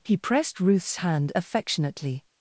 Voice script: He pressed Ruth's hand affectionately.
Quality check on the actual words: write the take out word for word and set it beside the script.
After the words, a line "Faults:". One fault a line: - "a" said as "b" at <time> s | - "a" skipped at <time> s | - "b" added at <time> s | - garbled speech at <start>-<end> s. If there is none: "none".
He pressed Ruth's hand affectionately.
Faults:
none